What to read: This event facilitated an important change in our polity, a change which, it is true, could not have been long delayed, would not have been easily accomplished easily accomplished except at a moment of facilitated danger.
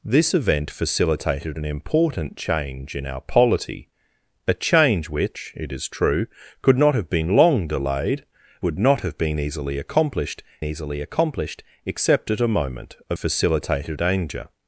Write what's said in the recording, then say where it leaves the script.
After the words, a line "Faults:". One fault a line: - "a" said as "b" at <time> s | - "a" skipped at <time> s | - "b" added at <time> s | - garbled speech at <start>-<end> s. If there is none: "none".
This event facilitated an important change in our polity, a change which, it is true, could not have been long delayed, would not have been easily accomplished easily accomplished except at a moment of facilitated danger.
Faults:
none